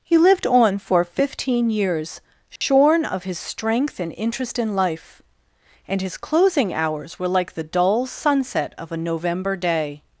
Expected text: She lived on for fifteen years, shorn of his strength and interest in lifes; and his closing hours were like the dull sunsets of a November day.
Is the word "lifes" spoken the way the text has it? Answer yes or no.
no